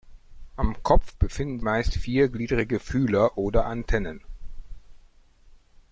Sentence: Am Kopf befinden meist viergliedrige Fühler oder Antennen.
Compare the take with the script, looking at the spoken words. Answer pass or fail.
pass